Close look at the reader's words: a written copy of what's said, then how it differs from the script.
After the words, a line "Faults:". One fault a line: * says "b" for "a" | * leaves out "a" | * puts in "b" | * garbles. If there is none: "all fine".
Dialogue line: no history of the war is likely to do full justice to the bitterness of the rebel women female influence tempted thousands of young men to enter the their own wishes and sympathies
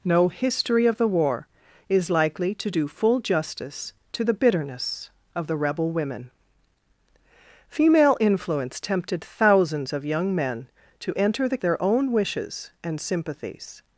no history of the war is likely to do full justice to the bitterness of the rebel women female influence tempted thousands of young men to enter the their own wishes and sympathies
Faults:
all fine